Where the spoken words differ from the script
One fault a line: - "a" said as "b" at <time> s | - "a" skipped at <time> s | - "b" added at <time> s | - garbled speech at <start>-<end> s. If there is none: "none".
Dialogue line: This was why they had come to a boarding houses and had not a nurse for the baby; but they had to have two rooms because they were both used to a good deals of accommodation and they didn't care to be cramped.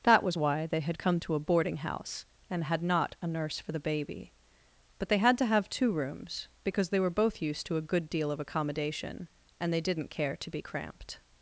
- "This" said as "That" at 0.0 s
- "houses" said as "house" at 1.8 s
- "deals" said as "deal" at 8.1 s